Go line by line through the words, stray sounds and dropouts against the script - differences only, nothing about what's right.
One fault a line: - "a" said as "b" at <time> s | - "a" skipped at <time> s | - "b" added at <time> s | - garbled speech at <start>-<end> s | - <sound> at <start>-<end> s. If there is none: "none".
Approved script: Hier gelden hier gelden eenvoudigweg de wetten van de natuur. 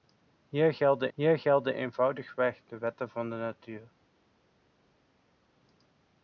none